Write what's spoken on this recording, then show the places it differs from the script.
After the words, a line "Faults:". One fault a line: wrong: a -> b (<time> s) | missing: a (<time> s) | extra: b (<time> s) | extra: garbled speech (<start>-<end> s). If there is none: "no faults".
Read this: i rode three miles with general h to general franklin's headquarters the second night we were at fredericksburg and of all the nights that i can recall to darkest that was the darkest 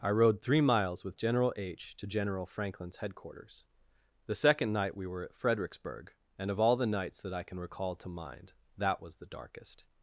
i rode three miles with general h to general franklin's headquarters the second night we were at fredericksburg and of all the nights that i can recall to mind that was the darkest
Faults:
wrong: darkest -> mind (8.1 s)